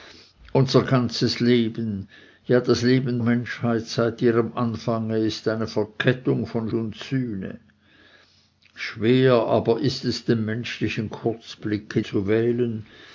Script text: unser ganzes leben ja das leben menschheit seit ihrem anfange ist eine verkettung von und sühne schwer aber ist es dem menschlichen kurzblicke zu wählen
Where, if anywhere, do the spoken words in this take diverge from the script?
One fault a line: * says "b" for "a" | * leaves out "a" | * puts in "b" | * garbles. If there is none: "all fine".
all fine